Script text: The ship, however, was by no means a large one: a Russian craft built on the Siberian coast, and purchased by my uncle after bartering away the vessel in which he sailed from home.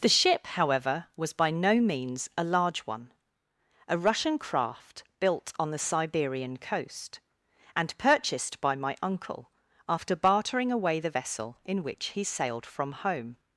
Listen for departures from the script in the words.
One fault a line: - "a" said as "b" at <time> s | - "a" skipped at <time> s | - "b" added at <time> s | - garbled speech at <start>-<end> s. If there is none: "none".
none